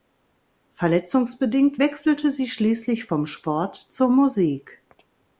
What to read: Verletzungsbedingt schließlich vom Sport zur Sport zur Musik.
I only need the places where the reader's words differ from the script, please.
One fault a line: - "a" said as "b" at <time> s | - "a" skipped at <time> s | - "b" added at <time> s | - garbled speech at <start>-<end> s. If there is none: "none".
- "wechselte sie" added at 1.8 s
- "Sport zur" skipped at 4.1 s